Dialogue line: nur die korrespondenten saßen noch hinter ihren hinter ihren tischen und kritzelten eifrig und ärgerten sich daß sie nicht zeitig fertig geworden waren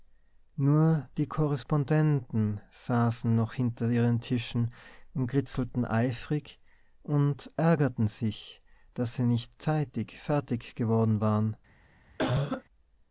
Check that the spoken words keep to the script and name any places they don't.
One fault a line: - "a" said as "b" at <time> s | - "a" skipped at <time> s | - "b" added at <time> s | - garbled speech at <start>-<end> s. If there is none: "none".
- "hinter ihren" skipped at 4.2 s